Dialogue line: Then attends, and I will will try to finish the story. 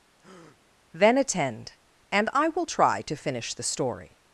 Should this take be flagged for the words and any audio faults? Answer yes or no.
yes